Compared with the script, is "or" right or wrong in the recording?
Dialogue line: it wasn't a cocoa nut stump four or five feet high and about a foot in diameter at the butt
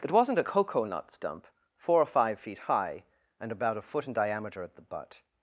right